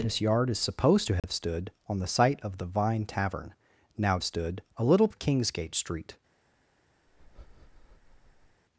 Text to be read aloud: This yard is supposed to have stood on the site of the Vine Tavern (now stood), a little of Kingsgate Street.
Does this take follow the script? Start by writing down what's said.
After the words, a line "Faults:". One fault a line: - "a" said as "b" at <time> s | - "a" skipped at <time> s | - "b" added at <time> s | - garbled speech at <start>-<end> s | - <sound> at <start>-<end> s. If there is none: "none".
This yard is supposed to have stood on the site of the Vine Tavern (now stood), a little of Kingsgate Street.
Faults:
- dropout at 1.2-1.2 s
- breath at 7.1-8.6 s